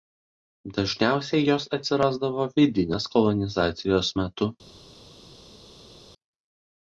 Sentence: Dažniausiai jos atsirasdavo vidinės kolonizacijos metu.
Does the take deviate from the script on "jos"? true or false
false